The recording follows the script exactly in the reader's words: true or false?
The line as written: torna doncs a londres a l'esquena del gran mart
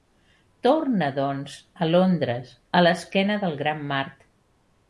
true